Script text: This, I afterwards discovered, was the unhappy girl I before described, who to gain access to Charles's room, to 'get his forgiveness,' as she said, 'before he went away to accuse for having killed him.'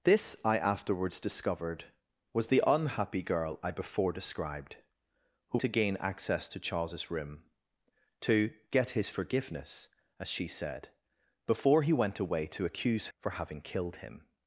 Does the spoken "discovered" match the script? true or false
true